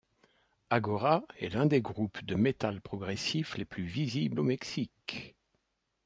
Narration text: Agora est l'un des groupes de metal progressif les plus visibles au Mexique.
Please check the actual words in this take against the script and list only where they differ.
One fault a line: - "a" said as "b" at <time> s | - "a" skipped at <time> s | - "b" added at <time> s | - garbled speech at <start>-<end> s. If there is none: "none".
none